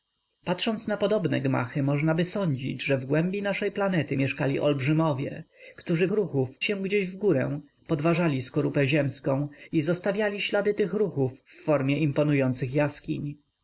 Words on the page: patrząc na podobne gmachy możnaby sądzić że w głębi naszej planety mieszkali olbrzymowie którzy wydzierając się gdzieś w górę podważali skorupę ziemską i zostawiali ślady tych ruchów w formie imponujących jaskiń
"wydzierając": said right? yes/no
no